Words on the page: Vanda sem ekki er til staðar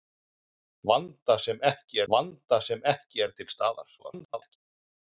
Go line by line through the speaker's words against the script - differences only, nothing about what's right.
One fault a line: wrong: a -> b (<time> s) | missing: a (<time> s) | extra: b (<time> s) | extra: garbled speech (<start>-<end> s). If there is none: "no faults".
extra: vanda sem ekki (2.1 s)
extra: garbled speech (4.0-4.6 s)